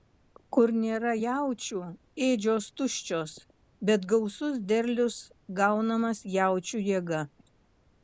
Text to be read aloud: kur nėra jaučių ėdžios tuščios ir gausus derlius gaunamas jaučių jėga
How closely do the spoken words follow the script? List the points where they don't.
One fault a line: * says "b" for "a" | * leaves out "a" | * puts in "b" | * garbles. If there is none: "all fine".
* says "bet" for "ir"